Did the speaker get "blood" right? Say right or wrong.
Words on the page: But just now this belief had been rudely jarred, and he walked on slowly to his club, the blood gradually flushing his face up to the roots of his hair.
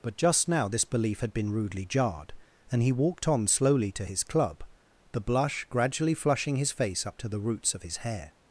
wrong